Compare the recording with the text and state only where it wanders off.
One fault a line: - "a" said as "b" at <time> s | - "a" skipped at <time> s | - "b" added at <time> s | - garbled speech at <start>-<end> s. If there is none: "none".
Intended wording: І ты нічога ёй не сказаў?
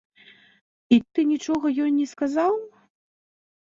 none